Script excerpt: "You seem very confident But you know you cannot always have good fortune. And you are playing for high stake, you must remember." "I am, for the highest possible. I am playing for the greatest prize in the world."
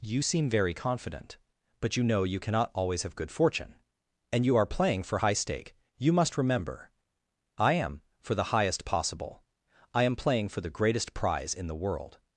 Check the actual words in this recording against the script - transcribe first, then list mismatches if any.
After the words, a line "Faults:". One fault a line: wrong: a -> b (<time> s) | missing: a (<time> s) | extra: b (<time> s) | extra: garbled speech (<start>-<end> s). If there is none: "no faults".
"You seem very confident But you know you cannot always have good fortune. And you are playing for high stake, you must remember." "I am, for the highest possible. I am playing for the greatest prize in the world."
Faults:
no faults